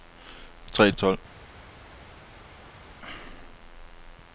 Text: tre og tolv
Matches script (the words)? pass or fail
pass